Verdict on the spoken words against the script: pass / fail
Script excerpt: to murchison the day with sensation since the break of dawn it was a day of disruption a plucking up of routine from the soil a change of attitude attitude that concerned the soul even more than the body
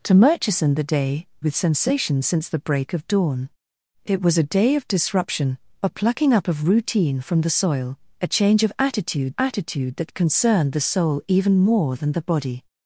pass